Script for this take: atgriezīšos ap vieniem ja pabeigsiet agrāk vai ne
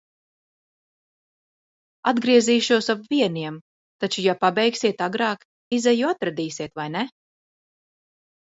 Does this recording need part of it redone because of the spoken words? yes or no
yes